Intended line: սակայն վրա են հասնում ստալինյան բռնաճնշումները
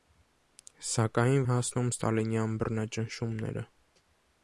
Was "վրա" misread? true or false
true